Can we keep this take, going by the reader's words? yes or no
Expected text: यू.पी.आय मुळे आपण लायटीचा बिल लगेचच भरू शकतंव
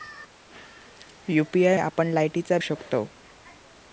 no